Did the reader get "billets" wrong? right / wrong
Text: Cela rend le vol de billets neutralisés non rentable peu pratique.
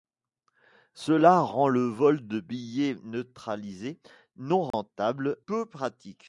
right